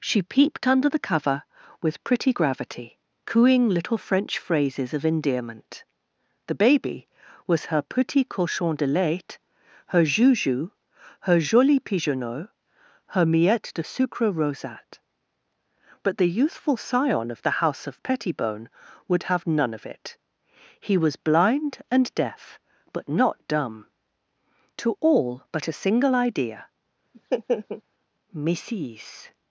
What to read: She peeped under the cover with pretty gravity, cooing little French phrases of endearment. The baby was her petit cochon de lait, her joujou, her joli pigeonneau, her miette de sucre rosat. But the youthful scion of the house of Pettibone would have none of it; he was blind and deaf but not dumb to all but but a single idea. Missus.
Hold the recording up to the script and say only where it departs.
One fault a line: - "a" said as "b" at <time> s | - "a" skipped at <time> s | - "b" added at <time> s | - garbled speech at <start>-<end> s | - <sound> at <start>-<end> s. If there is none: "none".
- "but" skipped at 25.7 s
- laugh at 27.1-27.8 s